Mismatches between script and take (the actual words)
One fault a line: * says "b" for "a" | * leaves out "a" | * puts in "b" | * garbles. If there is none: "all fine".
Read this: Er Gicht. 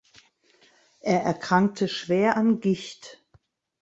* puts in "erkrankte schwer an"